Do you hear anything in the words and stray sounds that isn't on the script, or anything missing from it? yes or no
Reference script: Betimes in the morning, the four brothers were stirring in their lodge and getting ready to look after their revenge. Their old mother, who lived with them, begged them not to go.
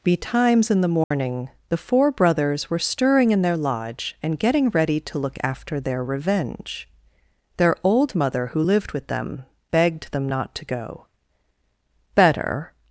yes